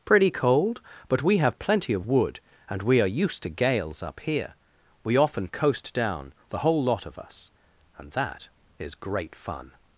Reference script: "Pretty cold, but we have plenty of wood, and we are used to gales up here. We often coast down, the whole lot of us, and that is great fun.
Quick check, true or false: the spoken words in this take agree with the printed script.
true